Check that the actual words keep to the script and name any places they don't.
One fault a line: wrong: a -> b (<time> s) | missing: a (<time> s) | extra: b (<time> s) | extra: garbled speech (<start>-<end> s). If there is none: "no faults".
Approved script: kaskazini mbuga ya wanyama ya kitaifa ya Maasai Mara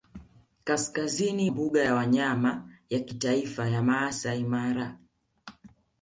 no faults